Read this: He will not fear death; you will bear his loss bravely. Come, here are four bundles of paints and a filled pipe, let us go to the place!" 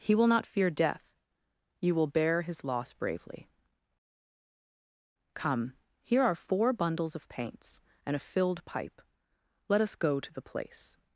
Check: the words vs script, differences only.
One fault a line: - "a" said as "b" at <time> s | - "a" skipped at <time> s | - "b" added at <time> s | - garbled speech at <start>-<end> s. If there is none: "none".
none